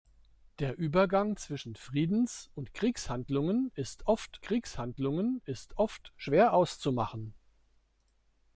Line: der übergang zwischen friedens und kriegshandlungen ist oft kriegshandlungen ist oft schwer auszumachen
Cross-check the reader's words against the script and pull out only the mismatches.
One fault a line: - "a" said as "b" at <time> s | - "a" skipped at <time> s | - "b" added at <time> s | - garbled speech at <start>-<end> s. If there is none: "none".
none